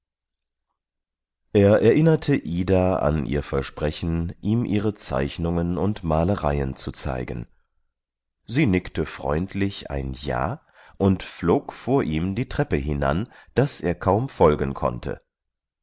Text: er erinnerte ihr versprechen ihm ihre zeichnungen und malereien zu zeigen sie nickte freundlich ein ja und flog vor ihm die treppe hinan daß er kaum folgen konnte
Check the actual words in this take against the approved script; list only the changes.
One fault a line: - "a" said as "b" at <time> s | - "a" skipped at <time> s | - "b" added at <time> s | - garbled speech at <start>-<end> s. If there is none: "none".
- "ida an" added at 2.4 s